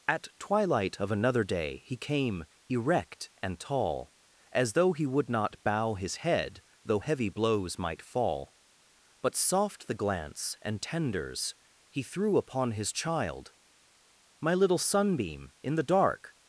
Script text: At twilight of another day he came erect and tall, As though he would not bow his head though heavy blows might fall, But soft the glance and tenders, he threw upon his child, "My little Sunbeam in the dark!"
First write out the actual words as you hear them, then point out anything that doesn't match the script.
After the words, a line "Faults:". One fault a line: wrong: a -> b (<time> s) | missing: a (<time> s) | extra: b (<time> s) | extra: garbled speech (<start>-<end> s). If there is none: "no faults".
At twilight of another day he came erect and tall, As though he would not bow his head though heavy blows might fall, But soft the glance and tenders, he threw upon his child, "My little Sunbeam in the dark!"
Faults:
no faults